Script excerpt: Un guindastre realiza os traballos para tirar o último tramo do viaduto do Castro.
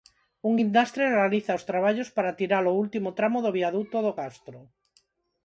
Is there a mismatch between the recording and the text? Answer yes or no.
no